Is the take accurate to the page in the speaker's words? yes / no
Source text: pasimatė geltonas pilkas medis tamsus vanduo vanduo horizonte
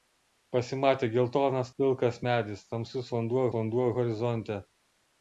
yes